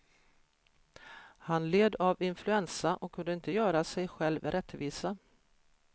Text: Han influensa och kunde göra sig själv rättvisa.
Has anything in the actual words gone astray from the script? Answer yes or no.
yes